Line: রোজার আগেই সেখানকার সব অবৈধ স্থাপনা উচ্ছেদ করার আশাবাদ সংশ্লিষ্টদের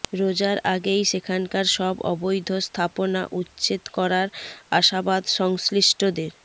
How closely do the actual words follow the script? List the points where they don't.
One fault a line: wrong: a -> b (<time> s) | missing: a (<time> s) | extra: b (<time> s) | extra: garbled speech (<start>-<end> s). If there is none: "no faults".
no faults